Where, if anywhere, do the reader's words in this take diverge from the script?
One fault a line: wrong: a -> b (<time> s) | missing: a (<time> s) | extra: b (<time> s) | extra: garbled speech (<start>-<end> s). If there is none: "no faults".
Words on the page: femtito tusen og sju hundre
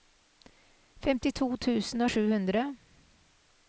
no faults